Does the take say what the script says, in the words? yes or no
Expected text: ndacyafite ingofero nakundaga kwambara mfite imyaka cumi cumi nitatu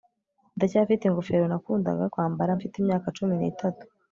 no